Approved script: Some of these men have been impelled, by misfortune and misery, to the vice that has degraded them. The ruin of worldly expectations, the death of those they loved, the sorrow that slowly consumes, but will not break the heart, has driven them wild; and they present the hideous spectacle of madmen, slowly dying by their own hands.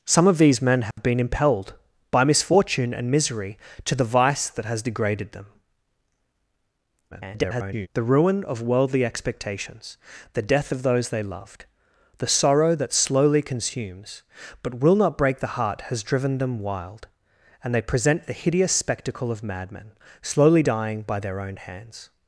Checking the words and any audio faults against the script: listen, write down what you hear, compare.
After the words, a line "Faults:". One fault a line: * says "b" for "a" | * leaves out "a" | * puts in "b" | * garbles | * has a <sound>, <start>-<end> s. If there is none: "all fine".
Some of these men have been impelled, by misfortune and misery, to the vice that has degraded them. [garbled] The ruin of worldly expectations, the death of those they loved, the sorrow that slowly consumes, but will not break the heart, has driven them wild; and they present the hideous spectacle of madmen, slowly dying by their own hands.
Faults:
* has a dropout, 0.9-1.0 s
* garbles